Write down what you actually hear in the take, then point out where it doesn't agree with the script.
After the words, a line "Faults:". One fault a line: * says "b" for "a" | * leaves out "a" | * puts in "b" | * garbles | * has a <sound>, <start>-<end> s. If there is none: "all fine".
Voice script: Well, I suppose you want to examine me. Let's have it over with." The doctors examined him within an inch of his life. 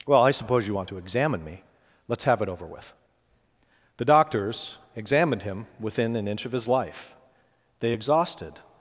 Well, I suppose you want to examine me. Let's have it over with." The doctors examined him within an inch of his life. They exhausted
Faults:
* puts in "They exhausted"